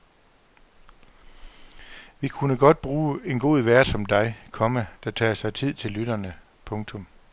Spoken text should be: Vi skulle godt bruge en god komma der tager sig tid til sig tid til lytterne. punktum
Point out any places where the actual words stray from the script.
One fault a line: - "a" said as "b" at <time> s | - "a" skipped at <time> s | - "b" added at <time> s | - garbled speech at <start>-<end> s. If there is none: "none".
- "skulle" said as "kunne" at 2.3 s
- "vært som dig" added at 3.6 s
- "sig tid til" skipped at 5.9 s